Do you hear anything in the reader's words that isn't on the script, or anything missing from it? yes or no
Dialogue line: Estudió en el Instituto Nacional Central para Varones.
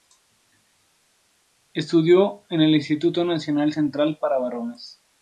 no